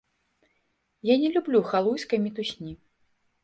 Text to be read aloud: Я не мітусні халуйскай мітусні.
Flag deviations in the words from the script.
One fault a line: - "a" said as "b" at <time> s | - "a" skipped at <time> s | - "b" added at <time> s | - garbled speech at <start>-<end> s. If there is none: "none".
- "мітусні" said as "люблю" at 1.3 s